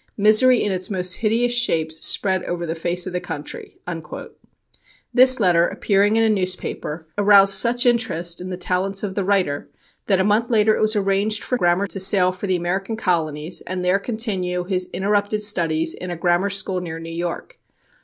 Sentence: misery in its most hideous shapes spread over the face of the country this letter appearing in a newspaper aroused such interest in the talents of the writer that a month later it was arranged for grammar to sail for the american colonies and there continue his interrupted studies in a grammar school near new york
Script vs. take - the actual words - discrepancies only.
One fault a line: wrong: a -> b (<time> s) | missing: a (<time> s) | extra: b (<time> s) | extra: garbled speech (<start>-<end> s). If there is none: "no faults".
no faults